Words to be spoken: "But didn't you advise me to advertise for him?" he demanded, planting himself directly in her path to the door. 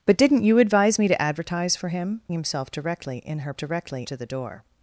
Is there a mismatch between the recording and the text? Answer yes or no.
yes